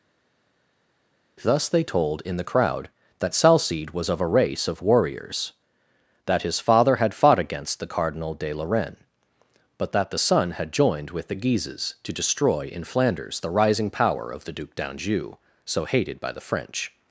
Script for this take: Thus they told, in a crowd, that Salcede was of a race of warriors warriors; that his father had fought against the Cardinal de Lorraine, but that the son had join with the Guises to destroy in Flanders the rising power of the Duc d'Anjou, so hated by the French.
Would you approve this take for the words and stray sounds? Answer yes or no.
no